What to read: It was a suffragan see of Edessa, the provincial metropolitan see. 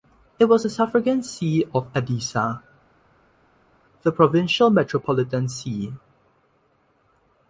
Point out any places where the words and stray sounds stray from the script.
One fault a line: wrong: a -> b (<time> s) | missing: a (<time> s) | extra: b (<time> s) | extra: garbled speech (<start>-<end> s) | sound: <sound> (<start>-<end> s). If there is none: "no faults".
no faults